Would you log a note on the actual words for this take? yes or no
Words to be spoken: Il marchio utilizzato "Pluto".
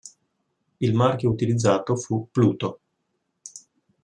yes